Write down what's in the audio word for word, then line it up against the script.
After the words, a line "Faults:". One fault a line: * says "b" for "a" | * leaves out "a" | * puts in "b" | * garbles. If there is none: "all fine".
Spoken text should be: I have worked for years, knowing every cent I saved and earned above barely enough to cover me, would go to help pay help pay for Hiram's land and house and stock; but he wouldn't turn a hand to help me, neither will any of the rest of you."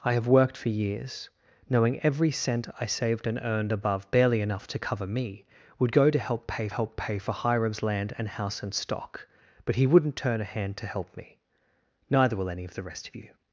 I have worked for years, knowing every cent I saved and earned above barely enough to cover me, would go to help pay help pay for Hiram's land and house and stock; but he wouldn't turn a hand to help me, neither will any of the rest of you."
Faults:
all fine